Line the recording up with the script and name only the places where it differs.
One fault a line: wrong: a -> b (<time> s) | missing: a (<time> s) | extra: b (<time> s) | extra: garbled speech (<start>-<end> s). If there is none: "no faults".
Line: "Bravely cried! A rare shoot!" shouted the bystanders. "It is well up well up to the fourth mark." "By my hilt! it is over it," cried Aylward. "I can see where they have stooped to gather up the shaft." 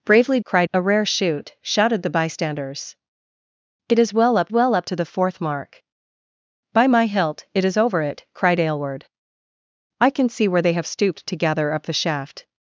no faults